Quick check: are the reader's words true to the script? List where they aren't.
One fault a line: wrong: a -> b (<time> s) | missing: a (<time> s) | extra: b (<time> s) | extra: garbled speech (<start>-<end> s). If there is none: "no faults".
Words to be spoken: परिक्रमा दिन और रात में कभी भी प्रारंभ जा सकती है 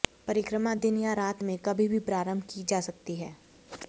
wrong: और -> या (1.0 s)
extra: की (2.5 s)